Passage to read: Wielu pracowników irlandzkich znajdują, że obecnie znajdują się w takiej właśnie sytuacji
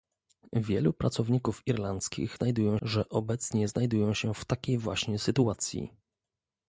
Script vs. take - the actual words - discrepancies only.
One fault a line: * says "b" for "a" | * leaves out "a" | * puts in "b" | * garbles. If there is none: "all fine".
all fine